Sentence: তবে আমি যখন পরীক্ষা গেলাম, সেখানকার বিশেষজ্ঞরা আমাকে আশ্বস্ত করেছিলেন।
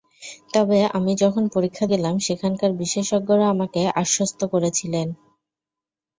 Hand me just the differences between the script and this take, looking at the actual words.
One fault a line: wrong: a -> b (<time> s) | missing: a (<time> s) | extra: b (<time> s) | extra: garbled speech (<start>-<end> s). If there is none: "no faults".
no faults